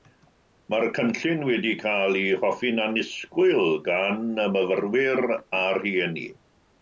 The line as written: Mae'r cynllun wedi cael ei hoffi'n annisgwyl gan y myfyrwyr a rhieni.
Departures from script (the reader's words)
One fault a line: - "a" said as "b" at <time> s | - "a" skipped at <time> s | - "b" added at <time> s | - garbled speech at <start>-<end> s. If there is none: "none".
none